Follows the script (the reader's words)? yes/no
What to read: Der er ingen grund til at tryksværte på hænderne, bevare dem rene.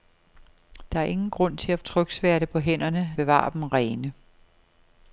yes